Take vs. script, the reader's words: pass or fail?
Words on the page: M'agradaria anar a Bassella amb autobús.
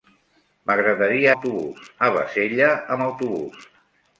fail